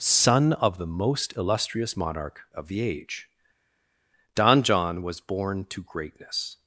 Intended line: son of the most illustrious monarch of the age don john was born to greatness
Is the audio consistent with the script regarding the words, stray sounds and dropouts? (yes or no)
yes